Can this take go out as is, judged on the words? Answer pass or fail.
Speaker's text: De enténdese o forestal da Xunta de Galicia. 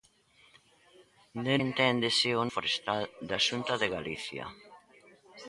pass